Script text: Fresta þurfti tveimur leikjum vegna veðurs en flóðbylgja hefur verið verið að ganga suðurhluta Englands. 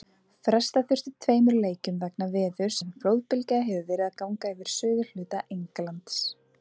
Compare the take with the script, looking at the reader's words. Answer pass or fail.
fail